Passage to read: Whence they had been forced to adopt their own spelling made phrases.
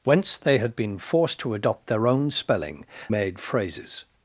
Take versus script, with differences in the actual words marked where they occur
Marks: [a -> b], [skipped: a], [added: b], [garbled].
Whence they had been forced to adopt their own spelling made phrases.